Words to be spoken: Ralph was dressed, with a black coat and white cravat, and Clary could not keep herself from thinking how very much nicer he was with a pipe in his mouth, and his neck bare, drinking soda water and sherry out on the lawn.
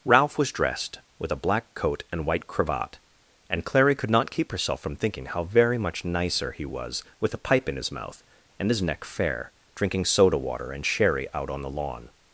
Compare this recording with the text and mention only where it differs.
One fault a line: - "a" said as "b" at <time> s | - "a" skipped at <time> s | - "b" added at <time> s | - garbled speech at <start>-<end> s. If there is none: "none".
- "bare" said as "fair" at 9.0 s